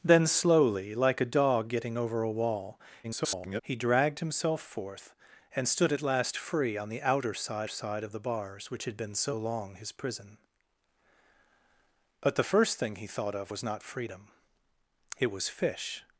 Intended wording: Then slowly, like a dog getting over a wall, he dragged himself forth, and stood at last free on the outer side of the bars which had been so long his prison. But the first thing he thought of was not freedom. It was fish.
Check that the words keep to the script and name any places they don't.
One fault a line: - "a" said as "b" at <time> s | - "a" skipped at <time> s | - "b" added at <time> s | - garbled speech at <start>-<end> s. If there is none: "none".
- garbled speech at 3.0-3.6 s
- "side" added at 7.7 s